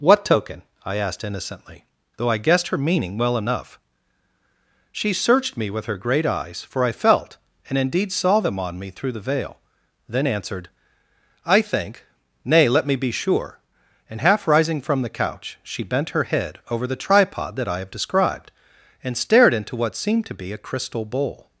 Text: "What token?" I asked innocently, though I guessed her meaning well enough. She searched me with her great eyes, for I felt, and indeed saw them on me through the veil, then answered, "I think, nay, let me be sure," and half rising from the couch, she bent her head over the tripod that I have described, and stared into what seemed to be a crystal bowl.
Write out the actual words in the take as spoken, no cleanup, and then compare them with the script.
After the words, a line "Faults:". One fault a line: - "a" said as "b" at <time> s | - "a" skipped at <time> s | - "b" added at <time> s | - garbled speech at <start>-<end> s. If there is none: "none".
"What token?" I asked innocently, though I guessed her meaning well enough. She searched me with her great eyes, for I felt, and indeed saw them on me through the veil, then answered, "I think, nay, let me be sure," and half rising from the couch, she bent her head over the tripod that I have described, and stared into what seemed to be a crystal bowl.
Faults:
none